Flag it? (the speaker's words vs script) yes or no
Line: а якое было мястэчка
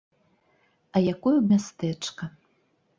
yes